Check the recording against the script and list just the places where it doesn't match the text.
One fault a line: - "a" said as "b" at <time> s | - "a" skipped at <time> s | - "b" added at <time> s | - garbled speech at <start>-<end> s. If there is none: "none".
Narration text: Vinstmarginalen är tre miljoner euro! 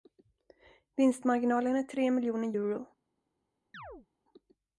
none